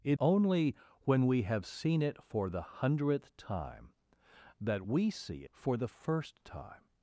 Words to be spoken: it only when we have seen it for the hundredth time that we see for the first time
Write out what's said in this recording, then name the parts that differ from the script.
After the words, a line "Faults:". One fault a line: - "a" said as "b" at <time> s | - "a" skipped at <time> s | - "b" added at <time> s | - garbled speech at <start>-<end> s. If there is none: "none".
it only when we have seen it for the hundredth time that we see for the first time
Faults:
none